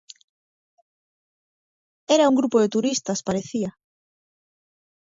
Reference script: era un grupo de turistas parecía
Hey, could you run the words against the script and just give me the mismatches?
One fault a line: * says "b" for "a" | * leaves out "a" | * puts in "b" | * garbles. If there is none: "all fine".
all fine